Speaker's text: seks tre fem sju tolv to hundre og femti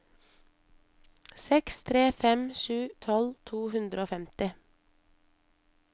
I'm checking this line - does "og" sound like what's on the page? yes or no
yes